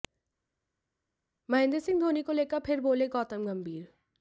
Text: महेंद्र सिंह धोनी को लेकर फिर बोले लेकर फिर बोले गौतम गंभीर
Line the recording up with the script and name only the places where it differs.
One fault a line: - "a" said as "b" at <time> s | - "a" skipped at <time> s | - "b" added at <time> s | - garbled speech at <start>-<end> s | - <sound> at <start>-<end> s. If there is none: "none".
- "लेकर फिर बोले" skipped at 3.1 s